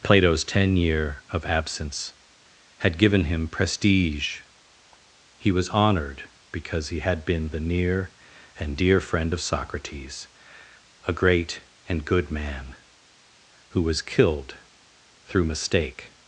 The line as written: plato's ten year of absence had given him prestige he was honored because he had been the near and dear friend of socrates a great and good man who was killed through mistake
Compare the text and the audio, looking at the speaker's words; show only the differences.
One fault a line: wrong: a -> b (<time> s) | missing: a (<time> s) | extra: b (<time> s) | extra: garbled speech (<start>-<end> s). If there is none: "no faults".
no faults